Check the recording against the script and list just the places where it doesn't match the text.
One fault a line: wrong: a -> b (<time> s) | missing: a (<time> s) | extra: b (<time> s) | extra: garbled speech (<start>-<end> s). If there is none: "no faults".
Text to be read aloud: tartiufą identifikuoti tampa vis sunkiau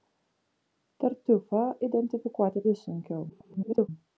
missing: tampa (2.6 s)
extra: garbled speech (3.3-3.9 s)